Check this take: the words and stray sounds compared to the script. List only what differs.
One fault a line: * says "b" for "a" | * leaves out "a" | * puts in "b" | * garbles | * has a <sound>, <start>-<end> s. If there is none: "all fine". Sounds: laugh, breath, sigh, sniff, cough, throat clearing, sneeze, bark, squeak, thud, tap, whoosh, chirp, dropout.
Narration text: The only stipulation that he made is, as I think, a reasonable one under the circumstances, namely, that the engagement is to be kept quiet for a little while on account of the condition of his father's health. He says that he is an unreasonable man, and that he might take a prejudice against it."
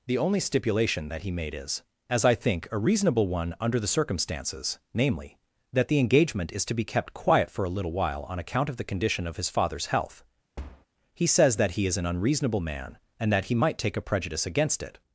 * has a thud, 10.6-10.9 s